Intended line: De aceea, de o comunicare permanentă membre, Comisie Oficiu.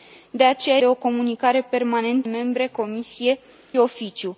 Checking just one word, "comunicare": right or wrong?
right